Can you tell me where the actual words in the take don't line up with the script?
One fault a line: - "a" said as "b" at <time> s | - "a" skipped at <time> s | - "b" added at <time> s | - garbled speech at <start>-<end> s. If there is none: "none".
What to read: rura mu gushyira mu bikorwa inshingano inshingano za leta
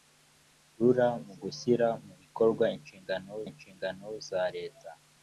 none